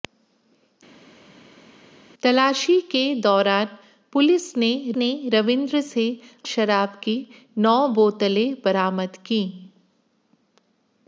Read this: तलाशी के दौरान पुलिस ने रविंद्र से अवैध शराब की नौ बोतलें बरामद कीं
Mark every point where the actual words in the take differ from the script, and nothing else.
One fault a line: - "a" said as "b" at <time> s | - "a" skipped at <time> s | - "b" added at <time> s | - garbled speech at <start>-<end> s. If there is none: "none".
- "ने" added at 5.0 s
- "अवैध" skipped at 6.1 s